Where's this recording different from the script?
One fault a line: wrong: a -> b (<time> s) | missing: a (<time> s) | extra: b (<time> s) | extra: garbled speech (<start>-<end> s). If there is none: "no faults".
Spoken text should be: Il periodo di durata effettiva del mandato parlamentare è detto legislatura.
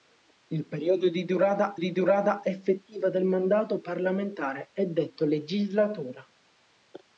extra: di durata (1.8 s)